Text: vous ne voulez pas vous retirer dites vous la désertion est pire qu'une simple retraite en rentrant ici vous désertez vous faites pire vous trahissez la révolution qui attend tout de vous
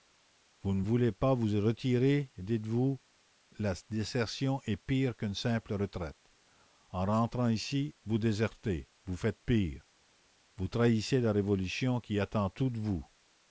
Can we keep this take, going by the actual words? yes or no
yes